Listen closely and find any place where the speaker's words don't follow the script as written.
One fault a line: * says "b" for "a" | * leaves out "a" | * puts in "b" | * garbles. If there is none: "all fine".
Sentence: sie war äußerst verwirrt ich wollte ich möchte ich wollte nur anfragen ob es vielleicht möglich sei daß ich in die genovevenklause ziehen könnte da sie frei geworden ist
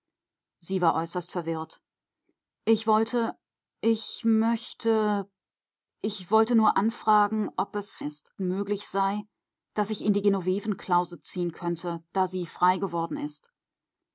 * says "ist" for "vielleicht"